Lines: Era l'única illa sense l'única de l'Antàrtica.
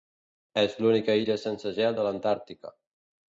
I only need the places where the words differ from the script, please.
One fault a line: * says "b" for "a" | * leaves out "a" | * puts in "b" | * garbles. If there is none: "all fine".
* says "És" for "Era"
* says "gel" for "l'única"